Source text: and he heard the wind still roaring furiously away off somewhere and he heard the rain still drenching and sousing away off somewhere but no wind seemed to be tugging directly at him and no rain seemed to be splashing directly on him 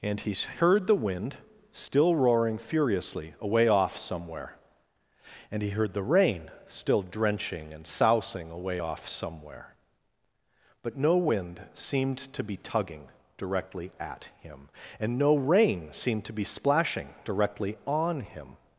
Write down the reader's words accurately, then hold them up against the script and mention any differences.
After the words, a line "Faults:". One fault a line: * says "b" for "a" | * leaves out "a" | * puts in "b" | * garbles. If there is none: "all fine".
and he heard the wind still roaring furiously away off somewhere and he heard the rain still drenching and sousing away off somewhere but no wind seemed to be tugging directly at him and no rain seemed to be splashing directly on him
Faults:
all fine